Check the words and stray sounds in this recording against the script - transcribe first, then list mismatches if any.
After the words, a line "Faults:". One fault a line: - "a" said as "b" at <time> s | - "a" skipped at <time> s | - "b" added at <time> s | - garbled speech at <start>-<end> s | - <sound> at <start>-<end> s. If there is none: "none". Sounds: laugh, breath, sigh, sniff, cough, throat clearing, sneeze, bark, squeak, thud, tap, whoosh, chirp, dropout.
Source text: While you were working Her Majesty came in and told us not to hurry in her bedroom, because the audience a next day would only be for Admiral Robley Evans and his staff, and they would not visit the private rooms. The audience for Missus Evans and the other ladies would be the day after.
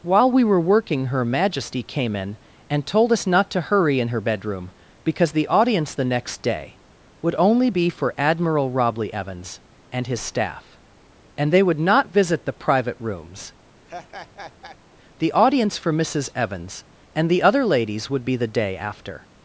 While we were working Her Majesty came in and told us not to hurry in her bedroom, because the audience the next day would only be for Admiral Robley Evans and his staff, and they would not visit the private rooms. The audience for Missus Evans and the other ladies would be the day after.
Faults:
- "you" said as "we" at 0.3 s
- "a" said as "the" at 5.9 s
- laugh at 13.8-14.8 s